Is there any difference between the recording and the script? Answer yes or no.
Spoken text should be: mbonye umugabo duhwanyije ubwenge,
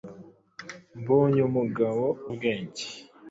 yes